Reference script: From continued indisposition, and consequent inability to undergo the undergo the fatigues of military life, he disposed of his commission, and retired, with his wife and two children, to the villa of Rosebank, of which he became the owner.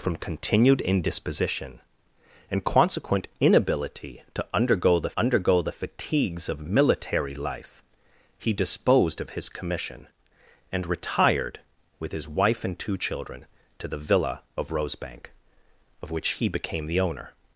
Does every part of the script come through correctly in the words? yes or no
yes